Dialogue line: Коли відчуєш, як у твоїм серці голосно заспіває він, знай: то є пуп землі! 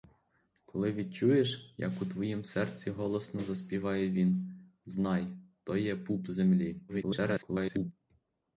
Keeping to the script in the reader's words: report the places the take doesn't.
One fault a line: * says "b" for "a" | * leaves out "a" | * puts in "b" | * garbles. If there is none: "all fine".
* garbles